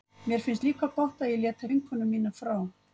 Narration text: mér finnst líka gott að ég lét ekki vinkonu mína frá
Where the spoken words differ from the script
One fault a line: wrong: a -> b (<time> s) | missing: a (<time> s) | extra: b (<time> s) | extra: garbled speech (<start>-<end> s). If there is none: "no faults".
missing: ekki (1.6 s)